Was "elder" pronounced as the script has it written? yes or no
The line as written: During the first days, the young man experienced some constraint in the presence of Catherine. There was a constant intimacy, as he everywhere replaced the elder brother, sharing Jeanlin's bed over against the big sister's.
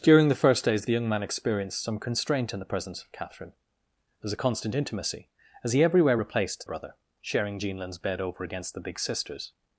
no